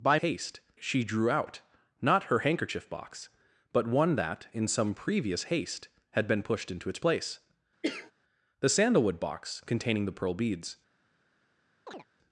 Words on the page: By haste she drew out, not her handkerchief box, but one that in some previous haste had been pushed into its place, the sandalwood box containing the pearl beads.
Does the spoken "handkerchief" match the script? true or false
true